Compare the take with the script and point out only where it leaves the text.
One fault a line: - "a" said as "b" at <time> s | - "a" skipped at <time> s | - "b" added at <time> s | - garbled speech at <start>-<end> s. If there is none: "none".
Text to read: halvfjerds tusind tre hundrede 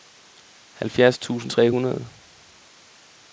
none